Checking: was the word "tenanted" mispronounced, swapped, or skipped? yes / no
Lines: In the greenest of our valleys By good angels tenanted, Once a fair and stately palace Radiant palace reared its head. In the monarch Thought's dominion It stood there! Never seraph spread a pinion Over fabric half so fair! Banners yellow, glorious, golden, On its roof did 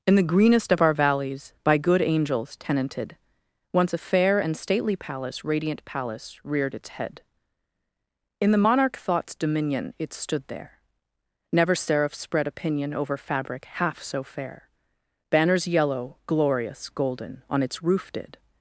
no